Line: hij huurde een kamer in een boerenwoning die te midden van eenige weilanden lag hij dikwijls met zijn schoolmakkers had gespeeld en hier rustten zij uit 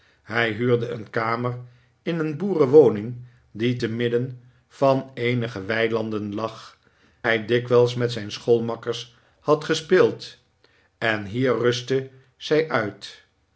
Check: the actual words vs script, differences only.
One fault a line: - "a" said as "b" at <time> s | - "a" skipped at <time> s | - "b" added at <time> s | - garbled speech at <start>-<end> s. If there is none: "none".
none